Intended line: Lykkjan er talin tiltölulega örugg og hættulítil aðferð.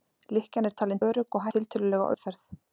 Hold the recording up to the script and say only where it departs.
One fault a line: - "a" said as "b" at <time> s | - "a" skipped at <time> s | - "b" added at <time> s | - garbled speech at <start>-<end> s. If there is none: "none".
- "tiltölulega" skipped at 1.0 s
- "hættulítil" said as "tiltölulega" at 1.5 s